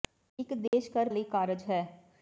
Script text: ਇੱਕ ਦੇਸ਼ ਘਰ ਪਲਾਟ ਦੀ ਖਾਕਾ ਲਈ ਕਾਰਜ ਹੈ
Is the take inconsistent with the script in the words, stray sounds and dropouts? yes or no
yes